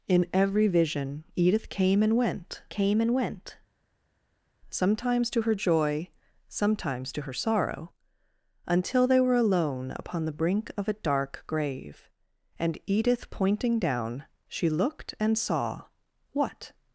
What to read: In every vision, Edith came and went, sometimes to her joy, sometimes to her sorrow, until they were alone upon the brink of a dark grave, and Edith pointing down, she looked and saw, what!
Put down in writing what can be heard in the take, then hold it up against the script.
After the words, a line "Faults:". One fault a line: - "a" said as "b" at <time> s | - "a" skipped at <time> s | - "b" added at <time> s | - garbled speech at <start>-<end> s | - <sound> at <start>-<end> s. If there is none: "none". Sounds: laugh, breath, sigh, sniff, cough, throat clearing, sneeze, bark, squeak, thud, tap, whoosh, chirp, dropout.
In every vision, Edith came and went came and went, sometimes to her joy, sometimes to her sorrow, until they were alone upon the brink of a dark grave, and Edith pointing down, she looked and saw, what!
Faults:
- "came and went" added at 2.7 s